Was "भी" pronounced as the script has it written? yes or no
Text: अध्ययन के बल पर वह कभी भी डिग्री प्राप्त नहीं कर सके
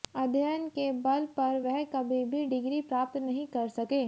yes